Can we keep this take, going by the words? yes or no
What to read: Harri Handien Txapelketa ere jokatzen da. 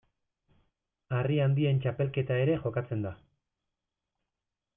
yes